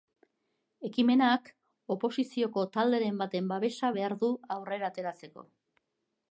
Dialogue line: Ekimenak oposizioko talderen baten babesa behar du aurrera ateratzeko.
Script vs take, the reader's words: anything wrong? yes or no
no